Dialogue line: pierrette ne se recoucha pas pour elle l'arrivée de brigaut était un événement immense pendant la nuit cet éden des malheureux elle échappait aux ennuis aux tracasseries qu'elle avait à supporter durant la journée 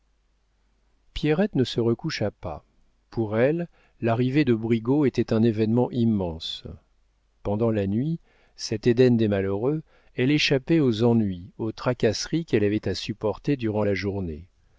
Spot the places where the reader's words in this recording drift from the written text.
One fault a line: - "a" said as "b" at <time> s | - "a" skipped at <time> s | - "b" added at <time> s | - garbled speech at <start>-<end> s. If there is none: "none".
none